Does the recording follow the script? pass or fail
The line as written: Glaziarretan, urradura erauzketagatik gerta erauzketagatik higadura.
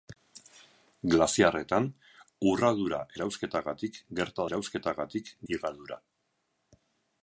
pass